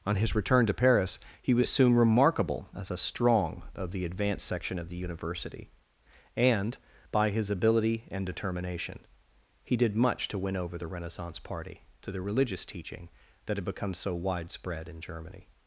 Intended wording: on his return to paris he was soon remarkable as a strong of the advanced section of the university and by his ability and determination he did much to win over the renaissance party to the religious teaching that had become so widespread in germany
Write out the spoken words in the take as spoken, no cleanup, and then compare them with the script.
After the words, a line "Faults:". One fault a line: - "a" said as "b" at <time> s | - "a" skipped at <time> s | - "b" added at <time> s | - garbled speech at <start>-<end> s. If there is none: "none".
on his return to paris he was soon remarkable as a strong of the advanced section of the university and by his ability and determination he did much to win over the renaissance party to the religious teaching that had become so widespread in germany
Faults:
none